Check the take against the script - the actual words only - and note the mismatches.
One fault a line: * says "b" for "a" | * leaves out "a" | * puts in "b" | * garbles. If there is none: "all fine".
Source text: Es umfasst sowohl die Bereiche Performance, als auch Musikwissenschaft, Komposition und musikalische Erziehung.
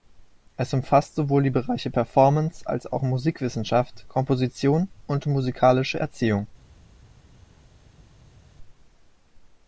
all fine